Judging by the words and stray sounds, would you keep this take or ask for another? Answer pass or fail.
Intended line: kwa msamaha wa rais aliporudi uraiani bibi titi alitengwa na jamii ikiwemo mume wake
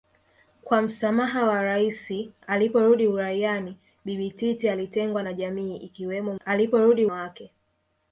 fail